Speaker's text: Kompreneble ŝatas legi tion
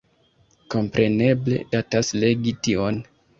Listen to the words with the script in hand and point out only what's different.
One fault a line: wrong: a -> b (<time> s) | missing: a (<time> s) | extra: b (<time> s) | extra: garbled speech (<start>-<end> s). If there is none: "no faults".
no faults